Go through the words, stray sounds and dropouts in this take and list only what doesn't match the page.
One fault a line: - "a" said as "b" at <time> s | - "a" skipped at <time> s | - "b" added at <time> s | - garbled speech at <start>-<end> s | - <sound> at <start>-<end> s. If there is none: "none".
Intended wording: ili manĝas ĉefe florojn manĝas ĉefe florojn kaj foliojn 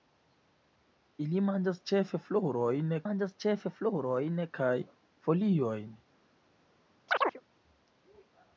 - chirp at 7.1-7.4 s